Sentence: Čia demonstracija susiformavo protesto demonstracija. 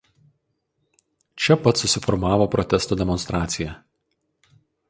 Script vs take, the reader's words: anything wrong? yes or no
yes